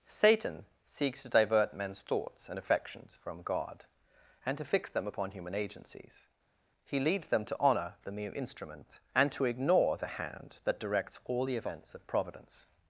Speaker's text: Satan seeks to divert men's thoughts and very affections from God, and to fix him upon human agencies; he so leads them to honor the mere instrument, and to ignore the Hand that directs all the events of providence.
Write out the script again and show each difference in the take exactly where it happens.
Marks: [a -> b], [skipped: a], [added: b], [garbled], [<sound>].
Satan seeks to divert men's thoughts and [skipped: very] affections from God, and to fix [him -> them] upon human agencies; he [skipped: so] leads them to honor the mere instrument, and to ignore the Hand that directs all the events of providence.